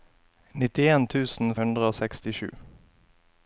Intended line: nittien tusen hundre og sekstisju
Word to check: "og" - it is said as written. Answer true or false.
true